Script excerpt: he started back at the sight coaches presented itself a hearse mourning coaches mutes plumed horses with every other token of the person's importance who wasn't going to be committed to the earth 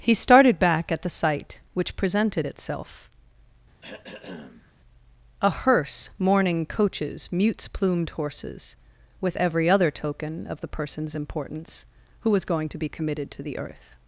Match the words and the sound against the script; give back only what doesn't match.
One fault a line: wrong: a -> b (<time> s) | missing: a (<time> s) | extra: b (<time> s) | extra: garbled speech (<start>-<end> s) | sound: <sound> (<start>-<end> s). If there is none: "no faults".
wrong: coaches -> which (1.8 s)
sound: throat clearing (3.8-4.7 s)
wrong: wasn't -> was (12.3 s)